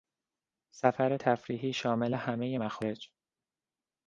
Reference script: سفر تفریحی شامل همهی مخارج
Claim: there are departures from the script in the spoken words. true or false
false